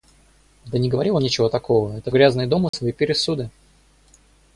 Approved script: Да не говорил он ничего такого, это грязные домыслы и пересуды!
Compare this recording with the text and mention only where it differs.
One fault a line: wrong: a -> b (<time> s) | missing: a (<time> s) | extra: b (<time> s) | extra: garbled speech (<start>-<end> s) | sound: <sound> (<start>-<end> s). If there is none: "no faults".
sound: dropout (2.7-2.7 s)